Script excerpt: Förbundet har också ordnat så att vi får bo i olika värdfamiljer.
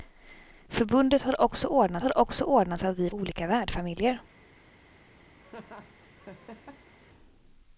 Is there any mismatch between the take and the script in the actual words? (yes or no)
yes